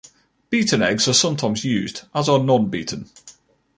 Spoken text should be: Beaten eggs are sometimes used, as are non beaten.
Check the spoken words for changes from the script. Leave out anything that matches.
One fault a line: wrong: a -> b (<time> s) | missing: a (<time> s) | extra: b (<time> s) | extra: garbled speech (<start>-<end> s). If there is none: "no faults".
no faults